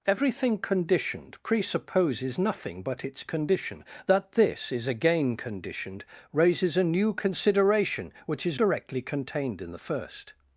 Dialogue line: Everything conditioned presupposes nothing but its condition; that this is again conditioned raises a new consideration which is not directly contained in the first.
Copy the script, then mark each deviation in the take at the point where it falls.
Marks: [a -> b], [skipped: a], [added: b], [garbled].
Everything conditioned presupposes nothing but its condition; that this is again conditioned raises a new consideration which is [skipped: not] directly contained in the first.